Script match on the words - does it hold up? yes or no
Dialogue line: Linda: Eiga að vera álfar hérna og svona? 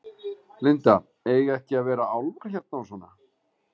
no